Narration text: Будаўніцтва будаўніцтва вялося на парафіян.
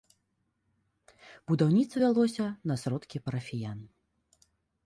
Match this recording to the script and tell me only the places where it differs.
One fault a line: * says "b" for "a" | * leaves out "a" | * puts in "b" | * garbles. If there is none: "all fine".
* leaves out "будаўніцтва"
* puts in "сродкі"